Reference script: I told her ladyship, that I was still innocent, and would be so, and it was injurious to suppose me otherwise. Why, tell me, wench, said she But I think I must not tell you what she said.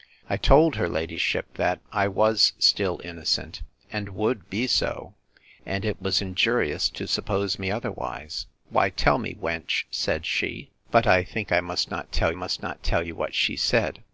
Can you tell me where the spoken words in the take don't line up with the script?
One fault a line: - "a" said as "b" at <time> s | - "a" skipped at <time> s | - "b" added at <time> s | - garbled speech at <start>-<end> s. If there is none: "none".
- "must not tell" added at 12.3 s